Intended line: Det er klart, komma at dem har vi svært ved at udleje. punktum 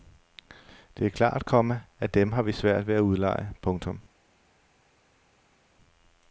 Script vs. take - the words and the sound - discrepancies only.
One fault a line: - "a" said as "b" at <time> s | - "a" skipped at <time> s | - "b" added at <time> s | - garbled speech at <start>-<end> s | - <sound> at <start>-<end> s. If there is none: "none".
none